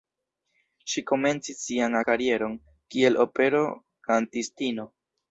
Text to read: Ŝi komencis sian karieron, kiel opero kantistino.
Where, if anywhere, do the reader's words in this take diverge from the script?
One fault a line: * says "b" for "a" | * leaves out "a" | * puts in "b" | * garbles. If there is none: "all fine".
all fine